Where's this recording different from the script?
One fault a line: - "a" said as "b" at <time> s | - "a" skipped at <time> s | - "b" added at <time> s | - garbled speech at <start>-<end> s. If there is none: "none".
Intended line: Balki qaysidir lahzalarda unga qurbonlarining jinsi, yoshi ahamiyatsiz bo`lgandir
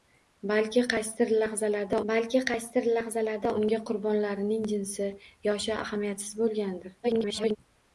- "balki qaysidir lahzalarda" added at 2.1 s
- garbled speech at 7.0-7.6 s